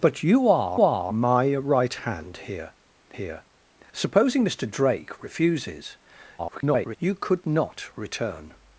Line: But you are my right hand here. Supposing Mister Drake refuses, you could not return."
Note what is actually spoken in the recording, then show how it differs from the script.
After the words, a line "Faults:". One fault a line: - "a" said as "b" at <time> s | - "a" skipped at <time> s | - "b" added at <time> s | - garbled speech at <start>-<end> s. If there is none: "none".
But you are are my right hand here here. Supposing Mister Drake refuses, [garbled] you could not return."
Faults:
- "are" added at 0.8 s
- "here" added at 3.2 s
- garbled speech at 6.4-7.0 s